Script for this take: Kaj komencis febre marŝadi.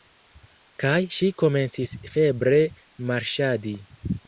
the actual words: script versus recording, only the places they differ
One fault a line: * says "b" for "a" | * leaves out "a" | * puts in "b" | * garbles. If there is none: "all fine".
* puts in "ŝi"